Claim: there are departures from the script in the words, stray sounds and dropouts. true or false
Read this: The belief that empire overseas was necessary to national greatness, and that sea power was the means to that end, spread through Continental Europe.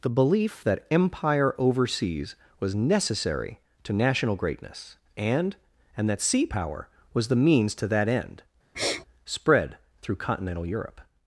true